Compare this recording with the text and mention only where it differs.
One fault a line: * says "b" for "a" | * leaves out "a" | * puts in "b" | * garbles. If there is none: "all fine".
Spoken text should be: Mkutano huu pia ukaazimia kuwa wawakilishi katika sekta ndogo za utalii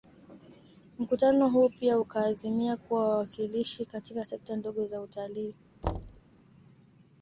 all fine